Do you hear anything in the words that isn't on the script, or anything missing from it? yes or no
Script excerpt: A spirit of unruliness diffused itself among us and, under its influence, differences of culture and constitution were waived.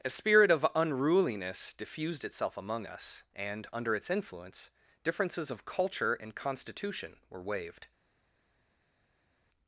no